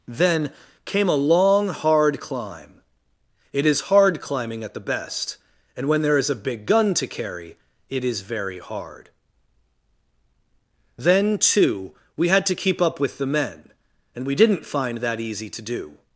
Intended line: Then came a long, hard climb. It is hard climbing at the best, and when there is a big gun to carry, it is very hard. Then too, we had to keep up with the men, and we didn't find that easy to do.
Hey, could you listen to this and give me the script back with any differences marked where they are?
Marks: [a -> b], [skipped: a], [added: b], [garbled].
Then came a long, hard climb. It is hard climbing at the best, and when there is a big gun to carry, it is very hard. Then too, we had to keep up with the men, and we didn't find that easy to do.